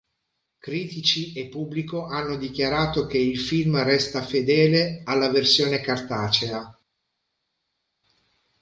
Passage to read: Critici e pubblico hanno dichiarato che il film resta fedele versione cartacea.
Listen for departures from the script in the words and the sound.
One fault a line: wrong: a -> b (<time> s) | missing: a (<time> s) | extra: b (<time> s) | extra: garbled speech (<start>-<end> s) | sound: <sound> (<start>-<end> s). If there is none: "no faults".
extra: alla (5.0 s)